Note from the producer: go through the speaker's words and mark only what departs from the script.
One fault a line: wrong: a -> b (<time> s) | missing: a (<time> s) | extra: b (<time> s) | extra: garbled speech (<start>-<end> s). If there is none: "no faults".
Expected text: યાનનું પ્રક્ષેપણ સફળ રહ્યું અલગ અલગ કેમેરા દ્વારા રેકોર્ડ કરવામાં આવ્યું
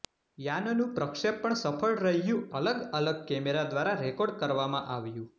no faults